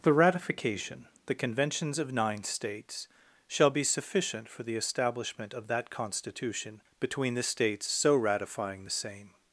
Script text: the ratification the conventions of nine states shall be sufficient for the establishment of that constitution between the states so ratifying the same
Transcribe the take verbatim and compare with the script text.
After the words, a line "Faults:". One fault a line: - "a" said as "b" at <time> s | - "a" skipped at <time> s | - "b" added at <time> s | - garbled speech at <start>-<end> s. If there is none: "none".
the ratification the conventions of nine states shall be sufficient for the establishment of that constitution between the states so ratifying the same
Faults:
none